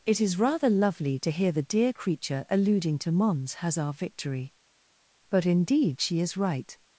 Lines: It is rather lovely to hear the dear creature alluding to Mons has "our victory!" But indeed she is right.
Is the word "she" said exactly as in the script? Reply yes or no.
yes